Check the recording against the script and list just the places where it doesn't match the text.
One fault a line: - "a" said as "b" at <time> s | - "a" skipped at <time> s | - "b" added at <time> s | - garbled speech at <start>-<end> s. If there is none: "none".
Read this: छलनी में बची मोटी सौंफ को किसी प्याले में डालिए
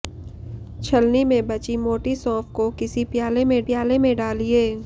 - "प्याले में" added at 3.7 s